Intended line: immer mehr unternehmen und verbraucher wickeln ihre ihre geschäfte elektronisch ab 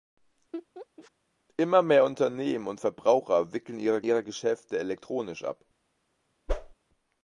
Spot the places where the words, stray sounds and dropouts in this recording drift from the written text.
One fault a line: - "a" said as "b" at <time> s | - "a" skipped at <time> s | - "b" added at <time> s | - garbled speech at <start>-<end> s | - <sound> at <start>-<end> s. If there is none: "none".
- laugh at 0.5-1.1 s
- whoosh at 6.5-6.7 s